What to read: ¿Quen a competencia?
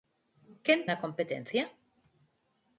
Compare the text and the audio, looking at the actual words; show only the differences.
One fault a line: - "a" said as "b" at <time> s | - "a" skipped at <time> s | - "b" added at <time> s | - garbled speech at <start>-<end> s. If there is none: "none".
none